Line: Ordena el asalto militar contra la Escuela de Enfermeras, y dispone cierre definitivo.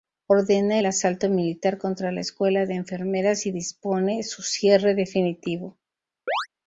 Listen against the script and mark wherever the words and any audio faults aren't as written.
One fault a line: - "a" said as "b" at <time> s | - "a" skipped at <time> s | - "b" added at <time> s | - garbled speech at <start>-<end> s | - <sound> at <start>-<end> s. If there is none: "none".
- "su" added at 4.2 s
- chirp at 6.3-6.5 s